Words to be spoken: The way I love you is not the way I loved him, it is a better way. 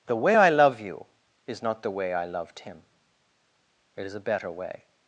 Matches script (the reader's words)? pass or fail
pass